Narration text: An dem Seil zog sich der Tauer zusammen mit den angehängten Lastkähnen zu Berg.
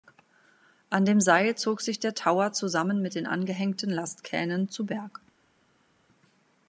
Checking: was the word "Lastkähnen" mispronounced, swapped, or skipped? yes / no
no